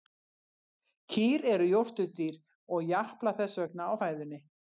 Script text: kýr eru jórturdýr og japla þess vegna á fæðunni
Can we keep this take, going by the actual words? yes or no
yes